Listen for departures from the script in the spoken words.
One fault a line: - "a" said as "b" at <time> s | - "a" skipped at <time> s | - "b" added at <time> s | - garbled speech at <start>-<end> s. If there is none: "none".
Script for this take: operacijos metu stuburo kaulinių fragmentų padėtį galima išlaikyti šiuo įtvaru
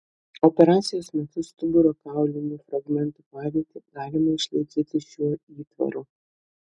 none